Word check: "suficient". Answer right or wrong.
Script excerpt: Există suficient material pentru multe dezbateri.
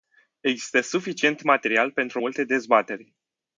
right